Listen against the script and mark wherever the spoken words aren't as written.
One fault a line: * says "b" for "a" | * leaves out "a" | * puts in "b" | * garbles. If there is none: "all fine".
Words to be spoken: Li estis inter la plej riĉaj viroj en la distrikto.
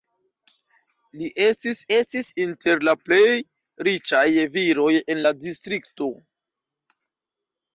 * puts in "estis"